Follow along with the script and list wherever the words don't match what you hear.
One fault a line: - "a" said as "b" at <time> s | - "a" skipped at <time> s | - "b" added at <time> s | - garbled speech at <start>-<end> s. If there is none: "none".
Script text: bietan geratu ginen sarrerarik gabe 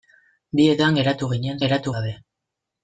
- "sarrerarik" said as "geratu" at 1.6 s